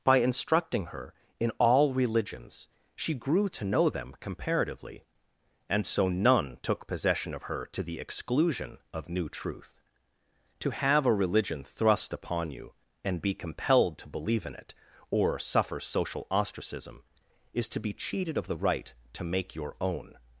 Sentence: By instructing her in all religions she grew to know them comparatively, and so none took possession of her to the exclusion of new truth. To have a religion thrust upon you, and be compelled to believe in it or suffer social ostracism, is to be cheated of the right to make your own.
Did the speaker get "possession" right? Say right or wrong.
right